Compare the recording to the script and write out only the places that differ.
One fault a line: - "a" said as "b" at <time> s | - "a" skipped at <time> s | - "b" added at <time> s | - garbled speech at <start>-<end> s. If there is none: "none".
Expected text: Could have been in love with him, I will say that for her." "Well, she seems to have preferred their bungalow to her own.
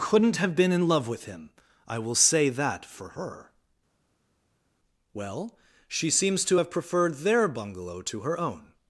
- "Could" said as "Couldn't" at 0.0 s